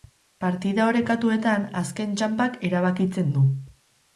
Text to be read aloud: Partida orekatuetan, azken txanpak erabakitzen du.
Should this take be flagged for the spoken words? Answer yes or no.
no